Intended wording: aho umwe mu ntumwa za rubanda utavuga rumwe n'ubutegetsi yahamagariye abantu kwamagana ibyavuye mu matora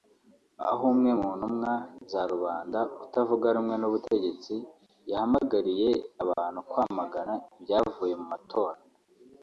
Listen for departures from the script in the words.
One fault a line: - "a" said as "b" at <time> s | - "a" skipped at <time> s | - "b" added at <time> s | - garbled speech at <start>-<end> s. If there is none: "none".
none